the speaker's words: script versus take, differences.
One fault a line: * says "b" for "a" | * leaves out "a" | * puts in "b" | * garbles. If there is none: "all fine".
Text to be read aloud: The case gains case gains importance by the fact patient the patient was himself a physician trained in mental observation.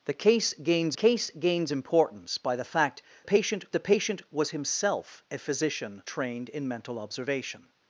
all fine